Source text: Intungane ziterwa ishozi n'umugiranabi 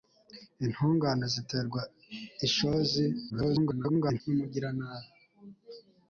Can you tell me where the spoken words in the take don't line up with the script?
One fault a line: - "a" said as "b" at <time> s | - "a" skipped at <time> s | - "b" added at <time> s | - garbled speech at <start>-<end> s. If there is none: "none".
- garbled speech at 3.3-4.2 s